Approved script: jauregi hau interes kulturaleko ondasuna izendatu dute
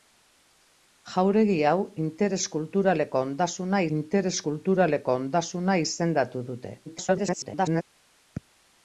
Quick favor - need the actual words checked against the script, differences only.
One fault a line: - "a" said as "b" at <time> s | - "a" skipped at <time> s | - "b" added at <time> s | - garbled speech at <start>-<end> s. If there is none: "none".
- "interes kulturaleko ondasuna" added at 4.0 s
- garbled speech at 6.9-7.8 s